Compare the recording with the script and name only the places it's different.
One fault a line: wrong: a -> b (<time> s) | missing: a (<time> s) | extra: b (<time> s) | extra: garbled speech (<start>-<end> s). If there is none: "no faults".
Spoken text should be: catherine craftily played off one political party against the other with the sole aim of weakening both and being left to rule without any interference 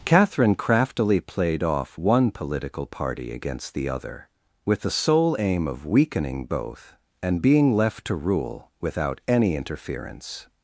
no faults